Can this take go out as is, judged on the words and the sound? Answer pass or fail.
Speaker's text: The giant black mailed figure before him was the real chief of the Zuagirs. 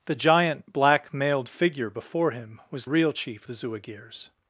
fail